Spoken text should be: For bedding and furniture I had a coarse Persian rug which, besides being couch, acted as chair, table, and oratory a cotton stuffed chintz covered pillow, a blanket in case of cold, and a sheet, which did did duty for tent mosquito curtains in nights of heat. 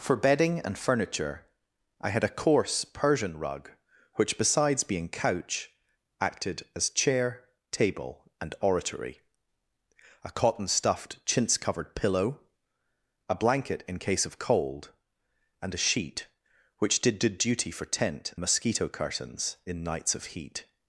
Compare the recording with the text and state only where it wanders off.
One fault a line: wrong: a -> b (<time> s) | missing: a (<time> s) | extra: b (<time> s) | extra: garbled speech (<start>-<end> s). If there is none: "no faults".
no faults